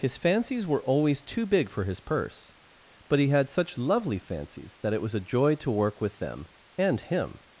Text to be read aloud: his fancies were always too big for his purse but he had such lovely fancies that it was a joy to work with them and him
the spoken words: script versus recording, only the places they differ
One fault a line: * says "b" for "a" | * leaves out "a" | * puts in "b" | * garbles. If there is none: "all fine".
all fine